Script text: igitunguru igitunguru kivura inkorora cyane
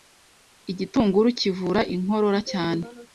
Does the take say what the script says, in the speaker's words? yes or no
no